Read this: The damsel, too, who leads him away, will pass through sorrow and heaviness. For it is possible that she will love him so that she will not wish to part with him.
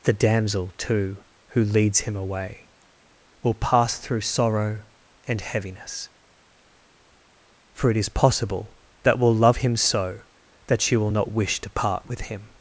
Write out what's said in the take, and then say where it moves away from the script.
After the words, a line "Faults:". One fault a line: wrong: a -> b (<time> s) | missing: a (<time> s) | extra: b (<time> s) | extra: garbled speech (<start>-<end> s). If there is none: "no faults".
The damsel, too, who leads him away, will pass through sorrow and heaviness. For it is possible that will love him so that she will not wish to part with him.
Faults:
missing: she (9.2 s)